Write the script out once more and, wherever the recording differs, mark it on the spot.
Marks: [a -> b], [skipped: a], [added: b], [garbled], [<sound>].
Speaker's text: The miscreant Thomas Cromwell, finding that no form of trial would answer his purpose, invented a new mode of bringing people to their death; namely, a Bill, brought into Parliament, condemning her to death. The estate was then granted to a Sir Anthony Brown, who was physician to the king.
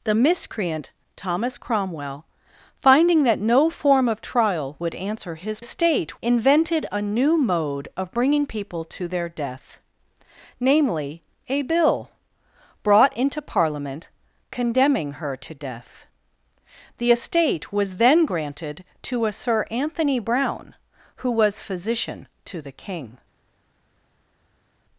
The miscreant Thomas Cromwell, finding that no form of trial would answer his [purpose, -> estate] invented a new mode of bringing people to their death; namely, a Bill, brought into Parliament, condemning her to death. The estate was then granted to a Sir Anthony Brown, who was physician to the king.